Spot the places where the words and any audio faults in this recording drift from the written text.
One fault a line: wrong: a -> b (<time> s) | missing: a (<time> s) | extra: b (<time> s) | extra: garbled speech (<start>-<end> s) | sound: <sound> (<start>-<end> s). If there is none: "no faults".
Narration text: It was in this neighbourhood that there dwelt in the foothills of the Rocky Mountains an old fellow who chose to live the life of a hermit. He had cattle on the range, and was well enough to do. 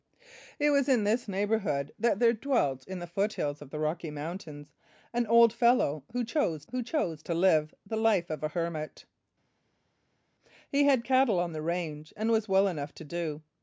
extra: who chose (6.7 s)